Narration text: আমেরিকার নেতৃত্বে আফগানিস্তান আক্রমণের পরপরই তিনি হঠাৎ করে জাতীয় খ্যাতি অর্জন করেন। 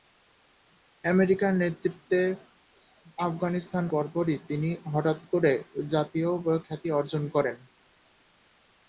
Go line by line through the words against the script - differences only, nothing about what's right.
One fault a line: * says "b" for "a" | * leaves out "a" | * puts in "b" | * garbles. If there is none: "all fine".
* leaves out "আক্রমণের"